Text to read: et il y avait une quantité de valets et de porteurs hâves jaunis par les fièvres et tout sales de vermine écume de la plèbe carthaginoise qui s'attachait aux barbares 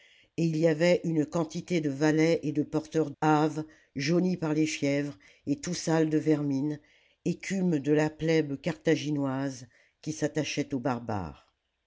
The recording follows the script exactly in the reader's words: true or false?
true